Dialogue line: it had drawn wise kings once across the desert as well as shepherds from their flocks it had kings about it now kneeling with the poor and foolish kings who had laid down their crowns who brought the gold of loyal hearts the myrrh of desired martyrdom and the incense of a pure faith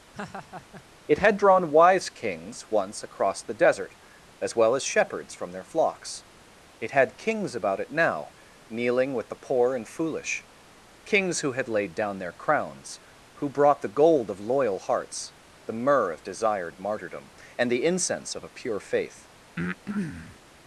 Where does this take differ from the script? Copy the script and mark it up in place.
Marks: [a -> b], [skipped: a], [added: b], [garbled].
it had drawn wise kings once across the desert as well as shepherds from their flocks it had kings about it now kneeling with the poor and foolish kings who had laid down their crowns who brought the gold of loyal hearts the myrrh of desired martyrdom and the incense of a pure faith